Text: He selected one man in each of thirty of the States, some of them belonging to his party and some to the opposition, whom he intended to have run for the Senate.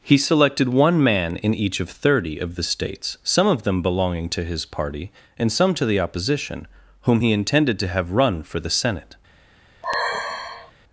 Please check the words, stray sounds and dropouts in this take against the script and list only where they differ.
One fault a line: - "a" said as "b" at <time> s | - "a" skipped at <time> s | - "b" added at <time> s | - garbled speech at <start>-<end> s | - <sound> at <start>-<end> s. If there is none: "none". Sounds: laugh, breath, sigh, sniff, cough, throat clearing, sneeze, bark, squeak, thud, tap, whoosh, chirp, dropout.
- sigh at 9.8-10.7 s